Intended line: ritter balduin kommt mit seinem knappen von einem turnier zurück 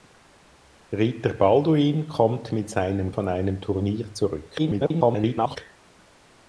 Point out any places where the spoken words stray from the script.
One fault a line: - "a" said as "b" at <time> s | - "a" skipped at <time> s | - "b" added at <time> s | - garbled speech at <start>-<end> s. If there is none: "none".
- "knappen" skipped at 3.1 s
- garbled speech at 4.6-5.6 s